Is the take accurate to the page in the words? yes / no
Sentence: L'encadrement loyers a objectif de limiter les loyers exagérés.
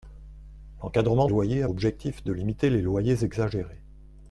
yes